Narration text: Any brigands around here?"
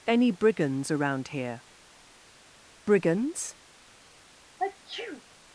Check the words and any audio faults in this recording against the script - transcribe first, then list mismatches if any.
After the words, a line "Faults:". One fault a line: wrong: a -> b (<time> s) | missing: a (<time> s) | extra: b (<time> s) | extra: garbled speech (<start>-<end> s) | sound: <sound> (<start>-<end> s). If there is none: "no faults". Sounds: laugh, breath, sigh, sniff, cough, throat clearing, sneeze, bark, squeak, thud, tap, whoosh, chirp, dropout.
Any brigands around here?" "Brigands
Faults:
extra: Brigands (2.9 s)
sound: sneeze (4.6-5.2 s)